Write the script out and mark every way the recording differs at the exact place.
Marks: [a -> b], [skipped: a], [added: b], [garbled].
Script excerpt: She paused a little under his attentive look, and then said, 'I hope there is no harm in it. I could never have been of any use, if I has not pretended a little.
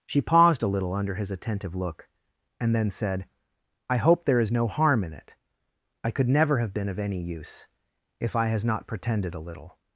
She paused a little under his attentive look, and then said, 'I hope there is no harm in it. I could never have been of any use, if I has not pretended a little.